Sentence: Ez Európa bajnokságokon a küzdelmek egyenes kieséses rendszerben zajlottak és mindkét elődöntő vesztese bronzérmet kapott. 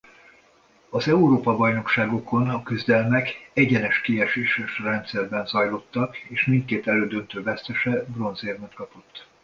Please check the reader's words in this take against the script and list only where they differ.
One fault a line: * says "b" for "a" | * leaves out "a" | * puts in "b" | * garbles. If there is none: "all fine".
* says "Az" for "Ez"